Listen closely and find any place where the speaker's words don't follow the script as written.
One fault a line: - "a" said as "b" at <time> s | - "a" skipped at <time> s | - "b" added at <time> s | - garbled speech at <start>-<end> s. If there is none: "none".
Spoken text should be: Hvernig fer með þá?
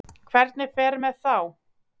none